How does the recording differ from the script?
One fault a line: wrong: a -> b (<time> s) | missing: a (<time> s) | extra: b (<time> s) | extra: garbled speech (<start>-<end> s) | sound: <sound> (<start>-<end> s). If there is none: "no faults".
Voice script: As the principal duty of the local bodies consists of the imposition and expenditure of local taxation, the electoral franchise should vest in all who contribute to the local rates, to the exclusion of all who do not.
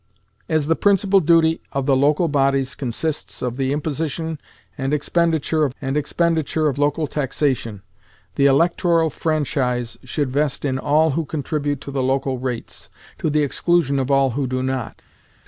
extra: and expenditure of (5.8 s)